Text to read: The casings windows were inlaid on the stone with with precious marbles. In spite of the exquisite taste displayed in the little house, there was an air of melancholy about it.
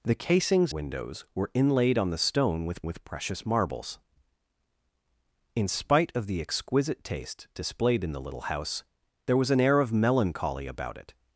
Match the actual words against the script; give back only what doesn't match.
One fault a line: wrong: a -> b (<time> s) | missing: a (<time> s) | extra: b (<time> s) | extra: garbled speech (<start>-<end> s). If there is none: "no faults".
no faults